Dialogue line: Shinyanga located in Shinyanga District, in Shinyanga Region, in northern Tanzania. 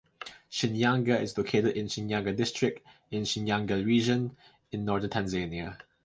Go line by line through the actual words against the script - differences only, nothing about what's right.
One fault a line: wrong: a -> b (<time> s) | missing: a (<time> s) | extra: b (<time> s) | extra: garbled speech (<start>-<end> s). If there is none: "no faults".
extra: is (1.2 s)